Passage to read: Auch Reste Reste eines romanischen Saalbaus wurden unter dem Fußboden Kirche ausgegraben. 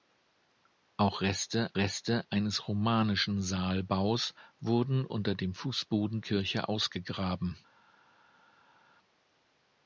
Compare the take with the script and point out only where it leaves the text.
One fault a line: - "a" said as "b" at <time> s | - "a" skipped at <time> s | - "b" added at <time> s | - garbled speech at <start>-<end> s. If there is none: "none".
none